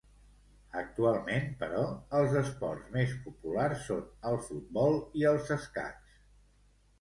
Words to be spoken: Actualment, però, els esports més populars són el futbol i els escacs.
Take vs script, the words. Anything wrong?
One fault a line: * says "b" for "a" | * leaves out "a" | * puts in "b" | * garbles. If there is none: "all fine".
all fine